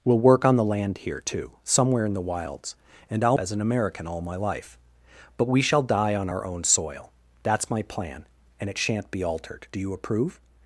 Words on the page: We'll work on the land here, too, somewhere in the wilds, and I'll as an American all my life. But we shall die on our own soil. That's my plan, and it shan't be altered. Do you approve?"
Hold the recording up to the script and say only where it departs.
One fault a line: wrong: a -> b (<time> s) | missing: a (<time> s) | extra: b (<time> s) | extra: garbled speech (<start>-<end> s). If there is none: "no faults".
no faults